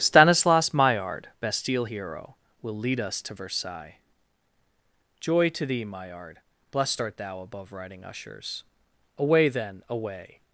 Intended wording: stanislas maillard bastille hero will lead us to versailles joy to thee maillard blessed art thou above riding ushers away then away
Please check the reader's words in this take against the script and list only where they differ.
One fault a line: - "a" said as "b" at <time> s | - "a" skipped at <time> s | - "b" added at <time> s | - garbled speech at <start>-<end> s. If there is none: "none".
none